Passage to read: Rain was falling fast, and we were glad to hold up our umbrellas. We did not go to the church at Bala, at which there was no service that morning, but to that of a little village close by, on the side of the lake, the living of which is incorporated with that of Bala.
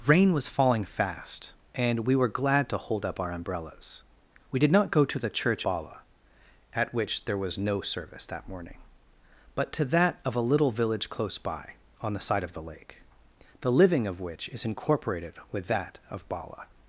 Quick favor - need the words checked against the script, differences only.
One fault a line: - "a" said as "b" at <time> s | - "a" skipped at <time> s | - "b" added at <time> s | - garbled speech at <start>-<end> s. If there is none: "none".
- "at" skipped at 5.6 s